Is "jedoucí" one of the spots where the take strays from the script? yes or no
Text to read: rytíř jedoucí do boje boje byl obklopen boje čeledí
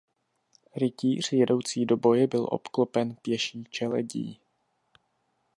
no